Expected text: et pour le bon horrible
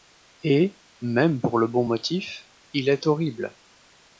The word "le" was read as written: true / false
true